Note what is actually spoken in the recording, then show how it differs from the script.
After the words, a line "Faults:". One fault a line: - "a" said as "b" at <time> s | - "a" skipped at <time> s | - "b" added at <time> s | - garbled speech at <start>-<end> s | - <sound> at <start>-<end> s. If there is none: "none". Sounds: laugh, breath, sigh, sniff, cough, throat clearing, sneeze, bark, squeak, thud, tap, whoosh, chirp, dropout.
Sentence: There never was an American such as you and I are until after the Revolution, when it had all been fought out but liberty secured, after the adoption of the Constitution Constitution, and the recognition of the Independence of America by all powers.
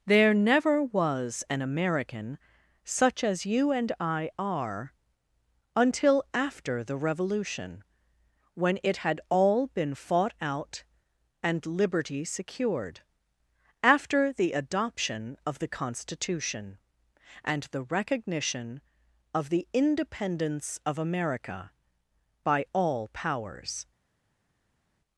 There never was an American such as you and I are until after the Revolution, when it had all been fought out and liberty secured, after the adoption of the Constitution, and the recognition of the Independence of America by all powers.
Faults:
- "but" said as "and" at 11.4 s
- "Constitution" skipped at 16.8 s